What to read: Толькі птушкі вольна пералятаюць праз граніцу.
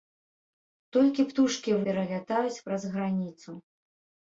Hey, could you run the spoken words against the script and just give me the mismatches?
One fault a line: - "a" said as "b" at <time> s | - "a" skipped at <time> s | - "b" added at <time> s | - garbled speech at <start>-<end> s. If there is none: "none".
- "вольна" skipped at 1.7 s